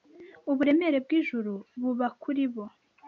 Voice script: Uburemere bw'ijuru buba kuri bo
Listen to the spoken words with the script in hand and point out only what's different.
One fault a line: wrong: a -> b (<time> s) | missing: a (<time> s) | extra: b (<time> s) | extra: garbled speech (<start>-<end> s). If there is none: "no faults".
no faults